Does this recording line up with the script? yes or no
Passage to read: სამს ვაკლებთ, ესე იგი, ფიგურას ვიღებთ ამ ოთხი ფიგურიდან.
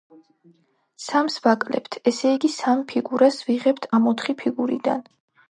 no